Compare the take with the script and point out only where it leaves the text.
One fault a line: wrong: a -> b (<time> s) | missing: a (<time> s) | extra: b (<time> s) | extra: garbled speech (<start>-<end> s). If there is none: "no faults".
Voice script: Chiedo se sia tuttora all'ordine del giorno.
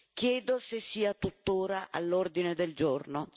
no faults